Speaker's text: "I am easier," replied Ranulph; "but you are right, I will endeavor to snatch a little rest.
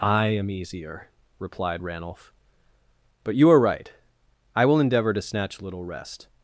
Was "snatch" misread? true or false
false